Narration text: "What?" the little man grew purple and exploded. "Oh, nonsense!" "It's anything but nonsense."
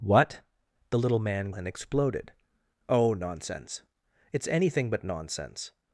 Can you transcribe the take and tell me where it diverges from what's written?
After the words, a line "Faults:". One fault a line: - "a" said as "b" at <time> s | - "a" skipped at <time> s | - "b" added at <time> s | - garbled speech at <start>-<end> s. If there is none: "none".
"What?" the little man and exploded. "Oh, nonsense!" "It's anything but nonsense."
Faults:
- "grew purple" skipped at 1.5 s